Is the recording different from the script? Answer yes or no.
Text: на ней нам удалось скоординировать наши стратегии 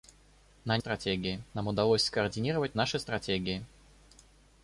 yes